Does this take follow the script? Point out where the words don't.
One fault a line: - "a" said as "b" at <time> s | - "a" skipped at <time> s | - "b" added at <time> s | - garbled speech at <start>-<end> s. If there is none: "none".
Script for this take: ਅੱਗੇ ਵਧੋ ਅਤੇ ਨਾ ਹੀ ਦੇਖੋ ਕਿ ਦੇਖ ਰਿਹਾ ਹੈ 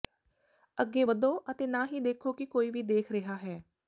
- "ਕੋਈ ਵੀ" added at 2.4 s